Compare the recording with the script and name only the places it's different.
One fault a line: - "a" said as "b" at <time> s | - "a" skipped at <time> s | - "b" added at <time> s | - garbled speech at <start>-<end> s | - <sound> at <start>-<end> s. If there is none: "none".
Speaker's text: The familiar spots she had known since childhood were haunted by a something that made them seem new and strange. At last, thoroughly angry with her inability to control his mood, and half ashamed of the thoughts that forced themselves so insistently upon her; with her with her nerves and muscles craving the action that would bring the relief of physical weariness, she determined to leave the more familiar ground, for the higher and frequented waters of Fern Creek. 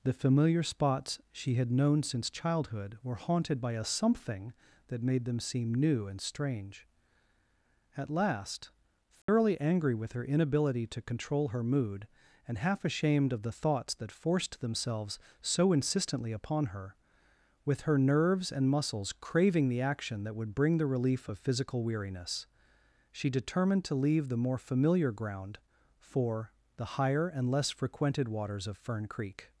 - dropout at 9.2-9.3 s
- "his" said as "her" at 11.5 s
- "with her" skipped at 18.0 s
- "less" added at 27.5 s